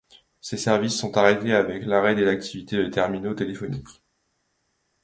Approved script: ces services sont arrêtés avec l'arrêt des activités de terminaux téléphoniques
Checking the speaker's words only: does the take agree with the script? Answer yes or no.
yes